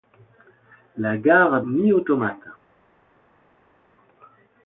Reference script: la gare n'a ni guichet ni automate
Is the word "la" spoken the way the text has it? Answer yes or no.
yes